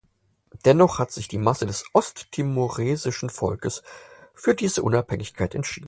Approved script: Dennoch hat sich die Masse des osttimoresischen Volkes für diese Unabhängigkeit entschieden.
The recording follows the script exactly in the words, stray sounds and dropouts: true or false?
true